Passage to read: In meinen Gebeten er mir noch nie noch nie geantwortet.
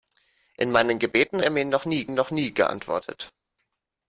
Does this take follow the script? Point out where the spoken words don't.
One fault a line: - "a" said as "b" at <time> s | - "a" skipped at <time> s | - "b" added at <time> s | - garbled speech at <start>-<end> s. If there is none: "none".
none